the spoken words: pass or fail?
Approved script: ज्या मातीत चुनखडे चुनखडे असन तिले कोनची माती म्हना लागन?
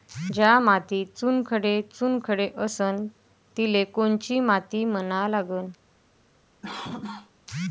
pass